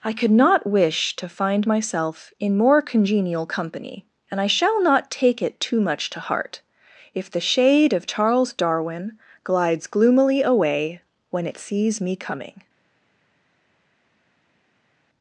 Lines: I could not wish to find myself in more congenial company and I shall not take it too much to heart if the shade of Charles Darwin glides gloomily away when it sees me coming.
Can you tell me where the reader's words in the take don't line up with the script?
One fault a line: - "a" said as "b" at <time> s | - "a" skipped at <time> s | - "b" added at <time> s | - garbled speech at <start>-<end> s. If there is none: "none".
none